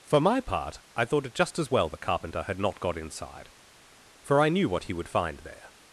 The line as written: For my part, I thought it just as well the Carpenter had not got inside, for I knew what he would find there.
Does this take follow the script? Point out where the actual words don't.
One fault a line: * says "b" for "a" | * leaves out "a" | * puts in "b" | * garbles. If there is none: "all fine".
all fine